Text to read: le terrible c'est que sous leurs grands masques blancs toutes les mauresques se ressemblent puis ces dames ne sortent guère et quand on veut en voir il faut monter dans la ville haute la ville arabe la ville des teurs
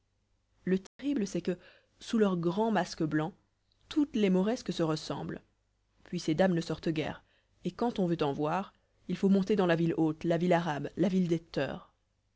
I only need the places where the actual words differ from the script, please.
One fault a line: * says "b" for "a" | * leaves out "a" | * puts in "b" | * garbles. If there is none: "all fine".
all fine